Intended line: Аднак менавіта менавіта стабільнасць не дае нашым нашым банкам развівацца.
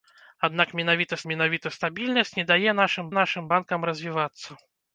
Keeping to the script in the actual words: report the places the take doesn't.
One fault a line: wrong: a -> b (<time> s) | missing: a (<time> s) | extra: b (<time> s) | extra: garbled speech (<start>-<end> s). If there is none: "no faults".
no faults